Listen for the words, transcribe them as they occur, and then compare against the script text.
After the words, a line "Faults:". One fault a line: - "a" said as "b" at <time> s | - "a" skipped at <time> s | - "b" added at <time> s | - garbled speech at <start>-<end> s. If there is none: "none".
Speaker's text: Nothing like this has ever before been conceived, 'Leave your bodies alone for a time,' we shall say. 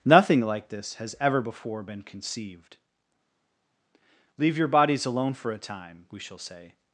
Nothing like this has ever before been conceived, 'Leave your bodies alone for a time,' we shall say.
Faults:
none